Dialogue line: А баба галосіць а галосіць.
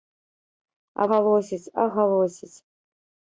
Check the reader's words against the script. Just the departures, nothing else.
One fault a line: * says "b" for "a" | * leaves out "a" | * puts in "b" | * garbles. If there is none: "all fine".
* leaves out "баба"